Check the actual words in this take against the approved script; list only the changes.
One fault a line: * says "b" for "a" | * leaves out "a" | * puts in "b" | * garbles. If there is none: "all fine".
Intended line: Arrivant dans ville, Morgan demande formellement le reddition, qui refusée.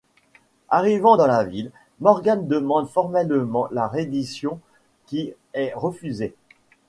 * puts in "la"
* says "la" for "le"
* puts in "est"